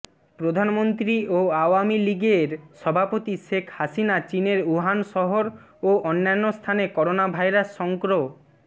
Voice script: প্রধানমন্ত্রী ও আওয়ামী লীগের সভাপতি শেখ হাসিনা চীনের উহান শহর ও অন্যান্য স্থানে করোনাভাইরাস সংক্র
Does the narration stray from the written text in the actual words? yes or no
no